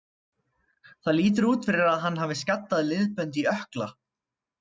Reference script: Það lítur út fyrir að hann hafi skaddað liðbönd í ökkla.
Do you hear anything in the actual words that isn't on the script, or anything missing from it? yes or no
no